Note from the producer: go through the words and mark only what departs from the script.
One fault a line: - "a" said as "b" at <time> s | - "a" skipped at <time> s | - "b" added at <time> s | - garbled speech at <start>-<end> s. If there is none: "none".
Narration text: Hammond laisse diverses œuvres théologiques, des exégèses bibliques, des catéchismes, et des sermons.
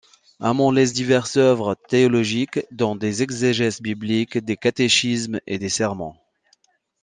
- "dont" added at 2.7 s